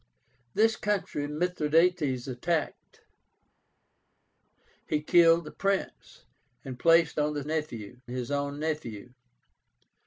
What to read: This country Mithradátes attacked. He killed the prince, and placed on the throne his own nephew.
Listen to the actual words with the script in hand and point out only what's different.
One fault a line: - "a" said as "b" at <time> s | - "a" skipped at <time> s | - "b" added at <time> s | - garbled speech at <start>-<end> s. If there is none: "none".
- "throne" said as "nephew" at 7.5 s